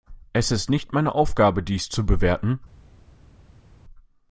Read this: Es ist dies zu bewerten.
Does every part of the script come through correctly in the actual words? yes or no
no